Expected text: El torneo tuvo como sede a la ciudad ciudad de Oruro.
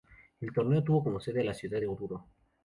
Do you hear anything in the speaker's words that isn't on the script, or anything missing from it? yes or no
yes